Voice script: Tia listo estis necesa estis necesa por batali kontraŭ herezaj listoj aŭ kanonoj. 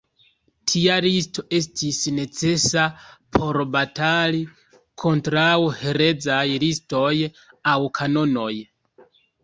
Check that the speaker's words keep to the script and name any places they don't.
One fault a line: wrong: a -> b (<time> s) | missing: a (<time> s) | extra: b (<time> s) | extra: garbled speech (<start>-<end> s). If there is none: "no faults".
missing: estis necesa (2.9 s)